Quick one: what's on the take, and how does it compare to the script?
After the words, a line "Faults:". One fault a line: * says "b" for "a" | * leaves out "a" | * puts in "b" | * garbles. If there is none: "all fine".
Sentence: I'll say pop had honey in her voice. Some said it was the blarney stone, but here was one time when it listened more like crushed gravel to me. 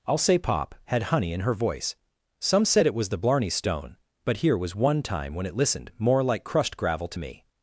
I'll say pop had honey in her voice. Some said it was the blarney stone, but here was one time when it listened more like crushed gravel to me.
Faults:
all fine